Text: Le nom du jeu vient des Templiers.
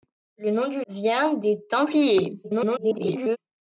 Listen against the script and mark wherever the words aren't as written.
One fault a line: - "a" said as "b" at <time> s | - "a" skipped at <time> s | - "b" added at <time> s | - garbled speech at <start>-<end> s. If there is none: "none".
- "jeu" skipped at 0.8 s
- garbled speech at 2.4-3.4 s